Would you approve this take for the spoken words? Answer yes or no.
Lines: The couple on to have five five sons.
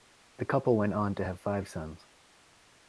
no